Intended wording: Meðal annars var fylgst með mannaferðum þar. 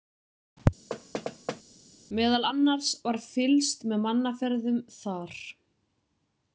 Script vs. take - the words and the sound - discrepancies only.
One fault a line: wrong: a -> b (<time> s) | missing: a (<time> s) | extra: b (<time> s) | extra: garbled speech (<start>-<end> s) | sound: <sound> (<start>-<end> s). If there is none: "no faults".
sound: thud (0.9-1.6 s)